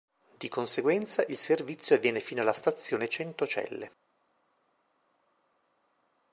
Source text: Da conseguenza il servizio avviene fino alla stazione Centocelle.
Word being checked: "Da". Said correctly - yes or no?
no